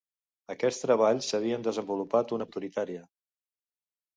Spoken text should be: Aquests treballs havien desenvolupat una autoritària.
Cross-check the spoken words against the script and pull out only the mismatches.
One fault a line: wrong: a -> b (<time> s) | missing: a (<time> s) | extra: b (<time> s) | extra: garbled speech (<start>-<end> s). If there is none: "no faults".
no faults